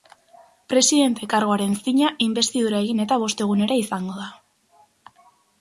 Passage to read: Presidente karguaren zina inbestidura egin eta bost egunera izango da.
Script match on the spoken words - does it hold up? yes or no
yes